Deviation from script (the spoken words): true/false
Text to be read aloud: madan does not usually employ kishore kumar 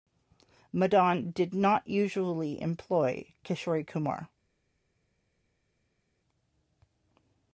true